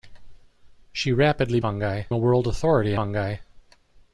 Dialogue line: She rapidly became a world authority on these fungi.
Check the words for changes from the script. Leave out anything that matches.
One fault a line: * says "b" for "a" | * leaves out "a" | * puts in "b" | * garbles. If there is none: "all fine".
* says "fungi" for "became"
* leaves out "on these"